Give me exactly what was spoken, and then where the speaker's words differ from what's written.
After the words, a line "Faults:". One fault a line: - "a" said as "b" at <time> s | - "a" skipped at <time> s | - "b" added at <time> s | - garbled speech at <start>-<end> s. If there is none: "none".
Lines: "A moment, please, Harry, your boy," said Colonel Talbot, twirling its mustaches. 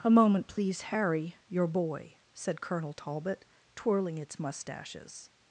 "A moment, please, Harry, your boy," said Colonel Talbot, twirling its mustaches.
Faults:
none